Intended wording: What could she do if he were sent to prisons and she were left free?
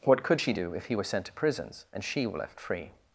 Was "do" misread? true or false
false